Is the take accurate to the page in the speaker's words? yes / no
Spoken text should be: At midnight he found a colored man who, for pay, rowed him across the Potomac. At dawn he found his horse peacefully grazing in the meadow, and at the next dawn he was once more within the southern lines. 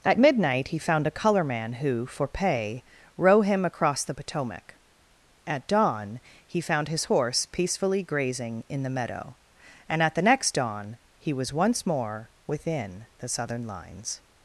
no